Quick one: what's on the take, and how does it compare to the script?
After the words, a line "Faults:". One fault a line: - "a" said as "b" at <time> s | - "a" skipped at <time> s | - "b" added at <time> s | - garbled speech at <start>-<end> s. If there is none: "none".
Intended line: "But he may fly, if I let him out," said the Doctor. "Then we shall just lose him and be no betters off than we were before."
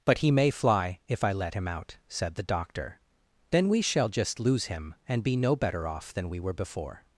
"But he may fly, if I let him out," said the Doctor. "Then we shall just lose him and be no better off than we were before."
Faults:
- "betters" said as "better" at 5.5 s